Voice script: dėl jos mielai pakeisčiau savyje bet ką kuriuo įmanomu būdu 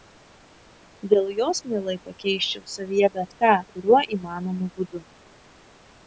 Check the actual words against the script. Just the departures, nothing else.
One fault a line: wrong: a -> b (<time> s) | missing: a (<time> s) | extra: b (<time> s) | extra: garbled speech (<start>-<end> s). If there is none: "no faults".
no faults